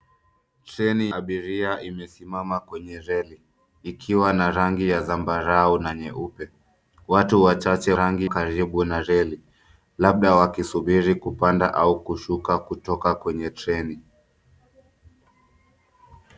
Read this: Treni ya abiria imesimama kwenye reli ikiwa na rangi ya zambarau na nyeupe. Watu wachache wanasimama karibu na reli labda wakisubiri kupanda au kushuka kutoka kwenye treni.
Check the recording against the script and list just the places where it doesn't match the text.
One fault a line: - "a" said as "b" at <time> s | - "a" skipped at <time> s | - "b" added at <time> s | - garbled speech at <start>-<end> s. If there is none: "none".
- "ya" skipped at 1.1 s
- "wanasimama" said as "rangi" at 7.9 s